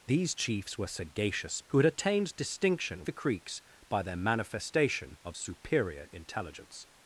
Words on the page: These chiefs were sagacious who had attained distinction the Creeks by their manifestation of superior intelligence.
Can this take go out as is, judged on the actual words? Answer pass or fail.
pass